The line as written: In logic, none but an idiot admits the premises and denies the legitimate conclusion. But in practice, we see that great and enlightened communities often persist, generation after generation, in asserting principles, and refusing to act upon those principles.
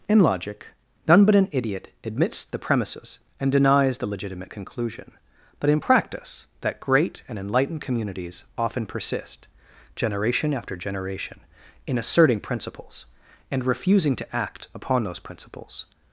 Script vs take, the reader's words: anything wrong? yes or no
yes